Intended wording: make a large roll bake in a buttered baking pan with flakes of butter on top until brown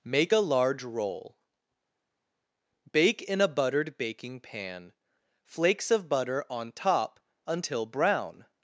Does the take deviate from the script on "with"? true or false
true